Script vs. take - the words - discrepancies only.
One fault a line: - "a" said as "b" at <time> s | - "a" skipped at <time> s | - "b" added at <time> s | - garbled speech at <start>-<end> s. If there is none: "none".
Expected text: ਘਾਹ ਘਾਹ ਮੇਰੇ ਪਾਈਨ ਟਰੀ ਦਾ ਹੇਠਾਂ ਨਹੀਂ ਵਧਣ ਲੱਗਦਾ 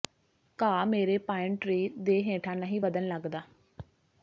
- "ਘਾਹ" skipped at 0.8 s
- "ਦਾ" said as "ਦੇ" at 2.0 s